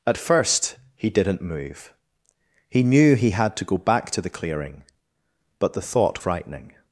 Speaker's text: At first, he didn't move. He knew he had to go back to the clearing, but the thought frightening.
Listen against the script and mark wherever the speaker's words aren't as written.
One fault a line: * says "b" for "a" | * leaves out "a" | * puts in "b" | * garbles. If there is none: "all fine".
all fine